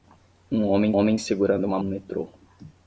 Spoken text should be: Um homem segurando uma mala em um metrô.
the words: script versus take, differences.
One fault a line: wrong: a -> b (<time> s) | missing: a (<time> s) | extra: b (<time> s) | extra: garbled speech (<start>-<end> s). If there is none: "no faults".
extra: homem (0.9 s)
missing: mala em (1.8 s)